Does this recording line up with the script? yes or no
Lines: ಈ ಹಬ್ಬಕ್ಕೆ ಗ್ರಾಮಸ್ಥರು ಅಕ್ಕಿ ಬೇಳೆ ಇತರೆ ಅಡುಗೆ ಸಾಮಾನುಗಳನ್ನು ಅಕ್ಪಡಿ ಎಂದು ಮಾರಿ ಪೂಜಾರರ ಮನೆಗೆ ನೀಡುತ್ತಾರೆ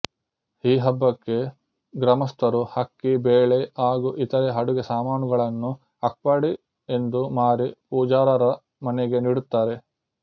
no